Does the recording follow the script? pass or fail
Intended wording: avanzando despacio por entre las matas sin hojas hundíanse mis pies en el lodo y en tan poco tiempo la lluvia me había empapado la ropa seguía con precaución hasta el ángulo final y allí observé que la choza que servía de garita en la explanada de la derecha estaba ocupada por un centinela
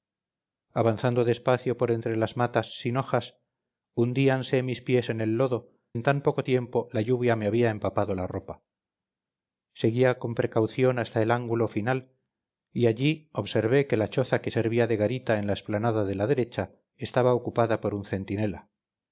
fail